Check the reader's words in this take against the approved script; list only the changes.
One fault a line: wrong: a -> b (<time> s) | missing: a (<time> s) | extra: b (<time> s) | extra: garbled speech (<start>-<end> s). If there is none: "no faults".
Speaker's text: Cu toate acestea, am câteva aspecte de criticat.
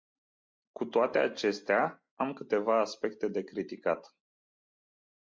no faults